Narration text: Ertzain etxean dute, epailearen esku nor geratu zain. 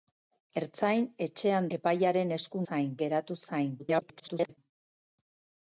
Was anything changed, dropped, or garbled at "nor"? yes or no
yes